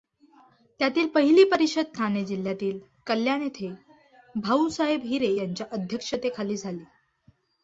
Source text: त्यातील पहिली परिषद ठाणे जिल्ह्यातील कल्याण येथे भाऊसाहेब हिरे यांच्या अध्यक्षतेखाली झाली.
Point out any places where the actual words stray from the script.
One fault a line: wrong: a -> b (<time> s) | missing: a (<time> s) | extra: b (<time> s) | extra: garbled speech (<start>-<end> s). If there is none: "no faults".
no faults